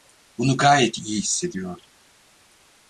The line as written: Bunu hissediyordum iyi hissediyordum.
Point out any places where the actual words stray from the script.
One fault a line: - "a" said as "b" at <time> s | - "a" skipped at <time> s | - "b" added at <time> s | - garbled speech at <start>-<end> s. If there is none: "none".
- "hissediyordum" said as "gayet" at 0.6 s